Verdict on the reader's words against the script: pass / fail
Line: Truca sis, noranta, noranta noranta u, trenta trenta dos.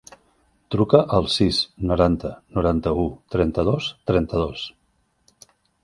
fail